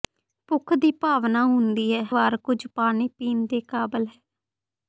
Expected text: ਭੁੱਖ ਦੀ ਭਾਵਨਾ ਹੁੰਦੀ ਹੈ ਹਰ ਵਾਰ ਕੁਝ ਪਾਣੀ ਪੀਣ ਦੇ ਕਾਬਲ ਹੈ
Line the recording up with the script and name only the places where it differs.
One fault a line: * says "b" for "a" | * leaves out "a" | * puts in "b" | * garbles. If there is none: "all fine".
* leaves out "ਹਰ"